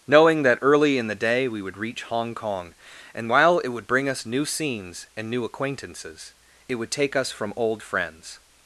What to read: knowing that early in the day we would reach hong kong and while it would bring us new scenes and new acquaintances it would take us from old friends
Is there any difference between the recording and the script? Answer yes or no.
no